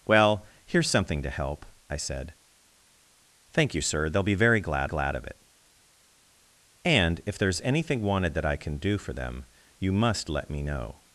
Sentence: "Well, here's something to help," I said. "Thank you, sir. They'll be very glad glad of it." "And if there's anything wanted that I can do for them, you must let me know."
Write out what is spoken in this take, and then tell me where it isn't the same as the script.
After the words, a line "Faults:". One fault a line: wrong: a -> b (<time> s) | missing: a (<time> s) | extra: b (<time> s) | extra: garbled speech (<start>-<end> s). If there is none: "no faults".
"Well, here's something to help," I said. "Thank you, sir. They'll be very glad glad of it." "And if there's anything wanted that I can do for them, you must let me know."
Faults:
no faults